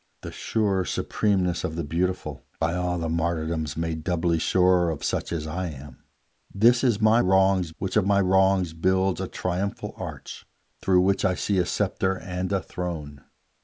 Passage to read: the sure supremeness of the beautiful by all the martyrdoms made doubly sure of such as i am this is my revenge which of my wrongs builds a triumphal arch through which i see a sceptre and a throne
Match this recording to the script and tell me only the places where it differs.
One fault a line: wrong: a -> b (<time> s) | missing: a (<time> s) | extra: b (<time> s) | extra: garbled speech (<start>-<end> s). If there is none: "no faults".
wrong: revenge -> wrongs (7.2 s)